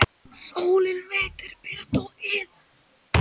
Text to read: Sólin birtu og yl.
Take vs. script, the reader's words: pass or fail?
fail